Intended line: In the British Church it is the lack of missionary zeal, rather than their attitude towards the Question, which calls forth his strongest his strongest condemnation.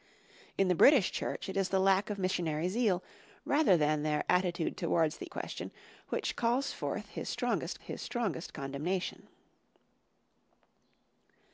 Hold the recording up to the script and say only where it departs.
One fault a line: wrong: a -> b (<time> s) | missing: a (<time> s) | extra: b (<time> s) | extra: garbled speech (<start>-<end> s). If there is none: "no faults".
no faults